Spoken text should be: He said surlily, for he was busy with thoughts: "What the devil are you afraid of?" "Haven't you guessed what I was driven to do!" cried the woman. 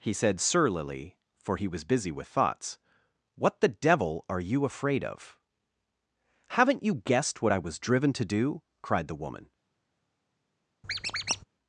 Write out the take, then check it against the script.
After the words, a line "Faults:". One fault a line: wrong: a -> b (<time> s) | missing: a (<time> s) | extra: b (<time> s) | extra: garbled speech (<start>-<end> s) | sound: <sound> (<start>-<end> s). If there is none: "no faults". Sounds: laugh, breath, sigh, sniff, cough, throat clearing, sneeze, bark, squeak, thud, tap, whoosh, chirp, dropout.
He said surlily, for he was busy with thoughts: "What the devil are you afraid of?" "Haven't you guessed what I was driven to do!" cried the woman.
Faults:
sound: squeak (10.8-11.4 s)